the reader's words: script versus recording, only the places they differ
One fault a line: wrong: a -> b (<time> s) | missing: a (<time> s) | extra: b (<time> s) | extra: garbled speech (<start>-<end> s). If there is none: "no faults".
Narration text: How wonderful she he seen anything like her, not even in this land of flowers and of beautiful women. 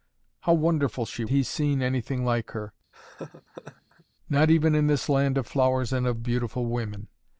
no faults